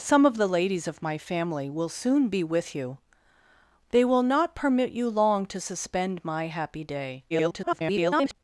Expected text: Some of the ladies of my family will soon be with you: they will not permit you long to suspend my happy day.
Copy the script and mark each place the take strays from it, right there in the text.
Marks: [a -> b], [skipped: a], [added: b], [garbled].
Some of the ladies of my family will soon be with you: they will not permit you long to suspend my happy day. [garbled]